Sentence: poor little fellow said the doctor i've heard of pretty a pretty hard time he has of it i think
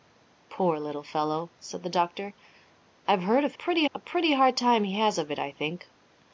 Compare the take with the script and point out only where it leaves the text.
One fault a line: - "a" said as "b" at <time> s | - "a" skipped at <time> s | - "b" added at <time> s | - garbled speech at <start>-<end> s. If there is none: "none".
none